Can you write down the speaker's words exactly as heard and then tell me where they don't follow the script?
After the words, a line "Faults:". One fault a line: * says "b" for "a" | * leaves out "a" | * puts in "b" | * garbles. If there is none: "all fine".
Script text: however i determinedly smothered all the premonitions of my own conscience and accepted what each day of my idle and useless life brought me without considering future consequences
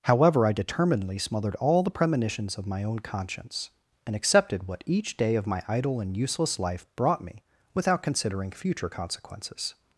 however i determinedly smothered all the premonitions of my own conscience and accepted what each day of my idle and useless life brought me without considering future consequences
Faults:
all fine